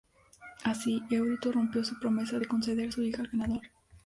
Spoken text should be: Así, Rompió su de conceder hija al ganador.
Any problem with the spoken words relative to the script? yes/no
yes